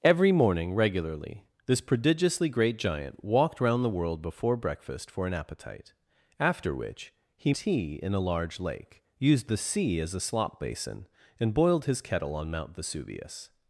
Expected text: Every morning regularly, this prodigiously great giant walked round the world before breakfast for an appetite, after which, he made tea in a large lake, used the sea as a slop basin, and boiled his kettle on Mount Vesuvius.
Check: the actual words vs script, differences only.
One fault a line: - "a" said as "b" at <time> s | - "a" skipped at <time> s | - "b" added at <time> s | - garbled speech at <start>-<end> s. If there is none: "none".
- "made" skipped at 7.5 s